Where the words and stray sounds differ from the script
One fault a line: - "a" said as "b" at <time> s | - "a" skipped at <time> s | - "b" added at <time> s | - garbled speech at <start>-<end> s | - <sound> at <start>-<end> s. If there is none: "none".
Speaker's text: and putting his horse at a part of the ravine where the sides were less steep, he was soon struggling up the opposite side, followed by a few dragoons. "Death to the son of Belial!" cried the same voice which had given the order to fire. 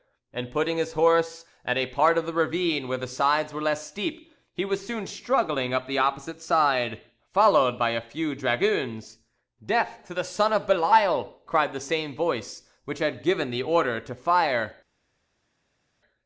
none